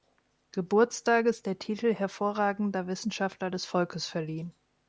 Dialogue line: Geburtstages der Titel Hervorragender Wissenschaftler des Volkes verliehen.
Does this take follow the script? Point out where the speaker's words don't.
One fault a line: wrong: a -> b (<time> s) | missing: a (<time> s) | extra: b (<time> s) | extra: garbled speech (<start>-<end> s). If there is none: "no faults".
no faults